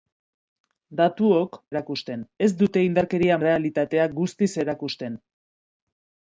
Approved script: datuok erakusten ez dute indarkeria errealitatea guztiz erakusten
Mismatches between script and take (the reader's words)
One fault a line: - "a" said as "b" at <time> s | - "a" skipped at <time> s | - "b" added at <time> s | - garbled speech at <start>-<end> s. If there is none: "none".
none